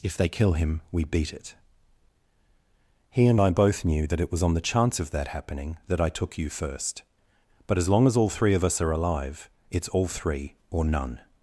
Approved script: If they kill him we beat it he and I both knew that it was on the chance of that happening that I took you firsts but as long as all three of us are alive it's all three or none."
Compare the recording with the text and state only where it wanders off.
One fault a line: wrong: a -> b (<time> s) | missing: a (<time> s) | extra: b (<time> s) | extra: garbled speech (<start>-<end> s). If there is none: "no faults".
wrong: firsts -> first (6.5 s)